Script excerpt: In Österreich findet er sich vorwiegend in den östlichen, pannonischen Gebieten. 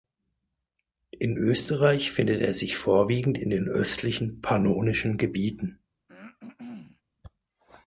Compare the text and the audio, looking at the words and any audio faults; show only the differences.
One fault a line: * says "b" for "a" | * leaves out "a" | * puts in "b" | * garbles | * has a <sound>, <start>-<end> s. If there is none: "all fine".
* has a throat clearing, 6.1-7.0 s